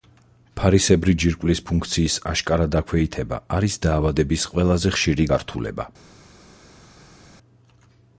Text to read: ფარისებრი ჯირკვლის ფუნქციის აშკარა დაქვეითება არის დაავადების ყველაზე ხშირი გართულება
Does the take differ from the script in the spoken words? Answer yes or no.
no